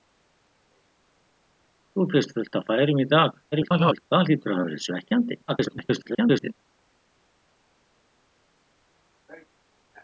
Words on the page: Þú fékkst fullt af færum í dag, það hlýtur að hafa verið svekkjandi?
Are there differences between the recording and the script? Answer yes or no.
yes